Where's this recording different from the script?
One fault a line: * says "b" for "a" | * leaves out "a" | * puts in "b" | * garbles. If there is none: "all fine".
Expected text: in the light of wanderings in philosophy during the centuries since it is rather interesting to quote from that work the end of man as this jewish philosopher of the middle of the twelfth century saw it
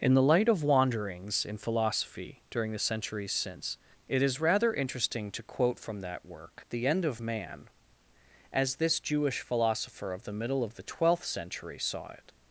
all fine